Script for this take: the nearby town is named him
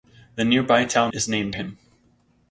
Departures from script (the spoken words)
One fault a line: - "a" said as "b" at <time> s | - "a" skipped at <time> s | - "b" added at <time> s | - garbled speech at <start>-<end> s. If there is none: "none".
none